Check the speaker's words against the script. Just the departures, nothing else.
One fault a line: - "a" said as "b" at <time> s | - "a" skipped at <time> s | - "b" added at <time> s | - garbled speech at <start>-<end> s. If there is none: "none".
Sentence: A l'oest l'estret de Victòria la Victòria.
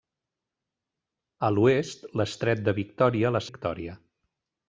none